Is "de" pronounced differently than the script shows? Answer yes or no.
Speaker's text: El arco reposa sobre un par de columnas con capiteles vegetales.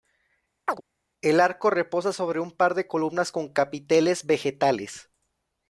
no